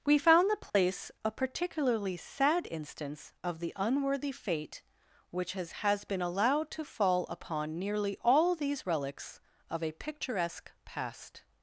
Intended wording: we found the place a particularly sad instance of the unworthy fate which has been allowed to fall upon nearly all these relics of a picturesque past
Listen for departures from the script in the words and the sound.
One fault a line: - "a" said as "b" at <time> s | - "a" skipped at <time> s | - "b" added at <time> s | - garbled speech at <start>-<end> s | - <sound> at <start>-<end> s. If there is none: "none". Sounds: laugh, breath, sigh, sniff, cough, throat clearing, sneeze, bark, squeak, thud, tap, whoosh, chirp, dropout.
- dropout at 0.7-0.7 s
- "has" added at 5.8 s